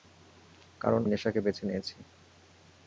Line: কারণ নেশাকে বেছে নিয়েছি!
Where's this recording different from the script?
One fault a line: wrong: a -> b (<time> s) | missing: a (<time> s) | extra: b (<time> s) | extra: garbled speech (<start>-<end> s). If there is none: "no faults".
no faults